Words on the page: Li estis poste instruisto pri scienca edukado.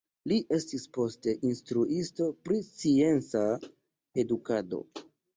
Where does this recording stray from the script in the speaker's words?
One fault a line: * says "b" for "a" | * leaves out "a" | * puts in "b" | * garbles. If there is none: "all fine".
all fine